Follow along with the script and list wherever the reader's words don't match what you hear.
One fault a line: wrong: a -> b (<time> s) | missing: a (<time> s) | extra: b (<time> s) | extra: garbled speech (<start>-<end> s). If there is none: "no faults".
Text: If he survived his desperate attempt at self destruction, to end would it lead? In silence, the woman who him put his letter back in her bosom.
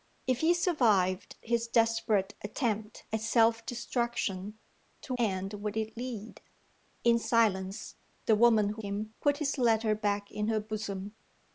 no faults